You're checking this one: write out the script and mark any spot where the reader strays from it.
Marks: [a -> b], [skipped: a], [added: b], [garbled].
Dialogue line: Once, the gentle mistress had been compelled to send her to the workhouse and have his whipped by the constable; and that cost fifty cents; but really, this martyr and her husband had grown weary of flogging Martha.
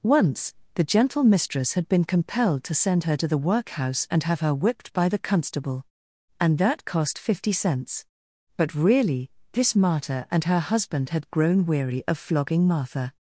Once, the gentle mistress had been compelled to send her to the workhouse and have [his -> her] whipped by the constable; and that cost fifty cents; but really, this martyr and her husband had grown weary of flogging Martha.